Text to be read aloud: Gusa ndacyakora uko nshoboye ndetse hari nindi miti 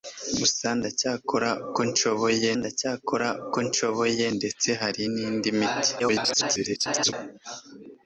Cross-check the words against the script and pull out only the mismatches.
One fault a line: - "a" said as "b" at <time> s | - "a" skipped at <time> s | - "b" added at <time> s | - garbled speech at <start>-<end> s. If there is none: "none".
- "ndacyakora uko nshoboye" added at 2.6 s
- garbled speech at 6.0-7.1 s